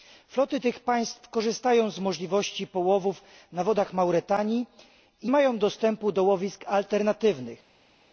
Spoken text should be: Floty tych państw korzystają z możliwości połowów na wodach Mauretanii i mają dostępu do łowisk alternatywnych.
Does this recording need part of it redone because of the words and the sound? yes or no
no